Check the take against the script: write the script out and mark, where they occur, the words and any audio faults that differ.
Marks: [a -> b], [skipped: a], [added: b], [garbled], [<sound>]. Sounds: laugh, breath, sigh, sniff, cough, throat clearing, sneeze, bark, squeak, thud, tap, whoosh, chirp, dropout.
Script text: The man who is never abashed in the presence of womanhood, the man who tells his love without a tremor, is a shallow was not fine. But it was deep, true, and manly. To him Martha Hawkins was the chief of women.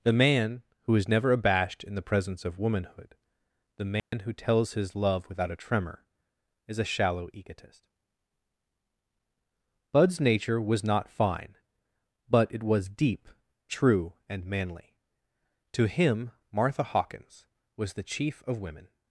The man who is never abashed in the presence of womanhood, the man [dropout] who tells his love without a tremor, is a shallow [added: egotist Bud's nature] was not fine. But it was deep, true, and manly. To him Martha Hawkins was the chief of women.